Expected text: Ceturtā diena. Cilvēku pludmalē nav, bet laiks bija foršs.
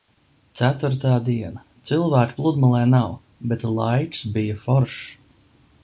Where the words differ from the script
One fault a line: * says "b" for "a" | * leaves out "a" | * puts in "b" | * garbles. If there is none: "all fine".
all fine